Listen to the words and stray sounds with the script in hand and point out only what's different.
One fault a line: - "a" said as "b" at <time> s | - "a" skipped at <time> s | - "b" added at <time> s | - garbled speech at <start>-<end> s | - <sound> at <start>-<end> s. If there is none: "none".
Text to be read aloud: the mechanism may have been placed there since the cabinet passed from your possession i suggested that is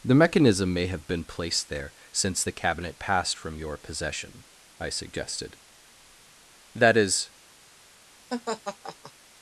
- laugh at 8.3-9.1 s